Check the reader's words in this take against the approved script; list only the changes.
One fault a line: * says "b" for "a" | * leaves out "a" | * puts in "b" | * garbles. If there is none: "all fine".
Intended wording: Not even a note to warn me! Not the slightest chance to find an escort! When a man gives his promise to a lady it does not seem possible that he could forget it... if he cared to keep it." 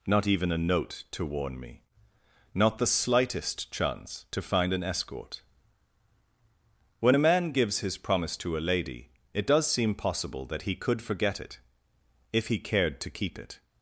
* leaves out "not"